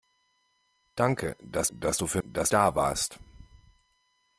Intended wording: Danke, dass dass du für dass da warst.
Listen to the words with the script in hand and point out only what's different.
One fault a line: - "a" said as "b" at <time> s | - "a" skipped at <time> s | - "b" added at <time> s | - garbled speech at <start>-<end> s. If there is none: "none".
none